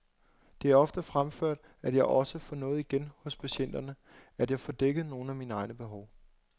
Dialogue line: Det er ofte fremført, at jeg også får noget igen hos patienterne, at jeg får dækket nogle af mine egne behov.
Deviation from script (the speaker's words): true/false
false